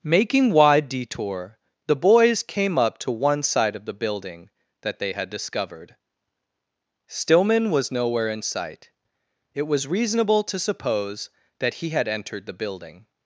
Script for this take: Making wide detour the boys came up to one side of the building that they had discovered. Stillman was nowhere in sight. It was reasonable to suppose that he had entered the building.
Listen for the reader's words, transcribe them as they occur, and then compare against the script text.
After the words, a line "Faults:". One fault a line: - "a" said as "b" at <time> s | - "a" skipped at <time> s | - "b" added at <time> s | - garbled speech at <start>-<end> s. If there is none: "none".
Making wide detour the boys came up to one side of the building that they had discovered. Stillman was nowhere in sight. It was reasonable to suppose that he had entered the building.
Faults:
none